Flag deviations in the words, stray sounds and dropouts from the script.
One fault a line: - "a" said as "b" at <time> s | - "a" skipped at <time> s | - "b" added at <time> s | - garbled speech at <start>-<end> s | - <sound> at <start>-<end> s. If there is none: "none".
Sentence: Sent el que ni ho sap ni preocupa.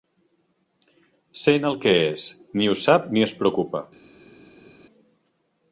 - "és" added at 2.1 s
- "es" added at 3.3 s